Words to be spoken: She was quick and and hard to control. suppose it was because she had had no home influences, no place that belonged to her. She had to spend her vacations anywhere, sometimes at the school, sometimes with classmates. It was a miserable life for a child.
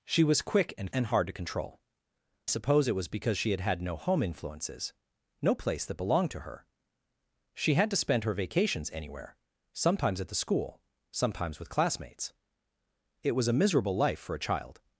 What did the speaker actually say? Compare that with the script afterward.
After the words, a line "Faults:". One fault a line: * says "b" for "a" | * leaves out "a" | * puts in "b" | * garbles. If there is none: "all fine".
She was quick and and hard to control. suppose it was because she had had no home influences, no place that belonged to her. She had to spend her vacations anywhere, sometimes at the school, sometimes with classmates. It was a miserable life for a child.
Faults:
all fine